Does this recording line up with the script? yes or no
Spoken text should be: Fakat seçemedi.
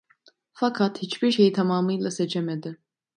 no